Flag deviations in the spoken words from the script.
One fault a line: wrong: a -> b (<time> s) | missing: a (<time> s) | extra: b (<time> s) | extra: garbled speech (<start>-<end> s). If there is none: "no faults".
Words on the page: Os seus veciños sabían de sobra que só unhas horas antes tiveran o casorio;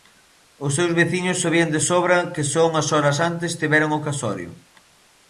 no faults